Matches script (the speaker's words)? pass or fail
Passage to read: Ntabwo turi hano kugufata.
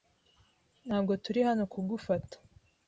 pass